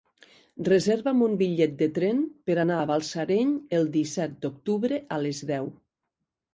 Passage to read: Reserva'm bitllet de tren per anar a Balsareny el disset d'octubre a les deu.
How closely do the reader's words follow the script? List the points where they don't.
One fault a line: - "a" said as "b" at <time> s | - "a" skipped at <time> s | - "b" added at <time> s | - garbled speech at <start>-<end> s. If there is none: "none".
- "un" added at 1.2 s